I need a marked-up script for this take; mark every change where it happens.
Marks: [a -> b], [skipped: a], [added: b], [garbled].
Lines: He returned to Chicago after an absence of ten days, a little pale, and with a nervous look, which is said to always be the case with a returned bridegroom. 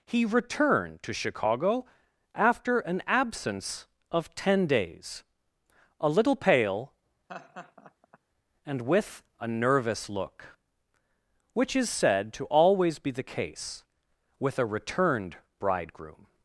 He returned to Chicago after an absence of ten days, a little pale, and with a nervous look, which is said to always be the case with a returned bridegroom.